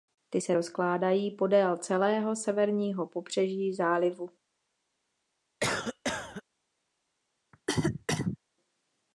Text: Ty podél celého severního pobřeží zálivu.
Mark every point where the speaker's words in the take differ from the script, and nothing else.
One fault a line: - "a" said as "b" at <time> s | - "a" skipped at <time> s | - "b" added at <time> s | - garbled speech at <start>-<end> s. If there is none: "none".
- "se rozkládají" added at 0.4 s